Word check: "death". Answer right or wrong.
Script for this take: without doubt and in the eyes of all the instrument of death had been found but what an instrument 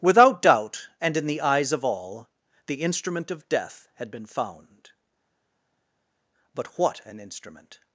right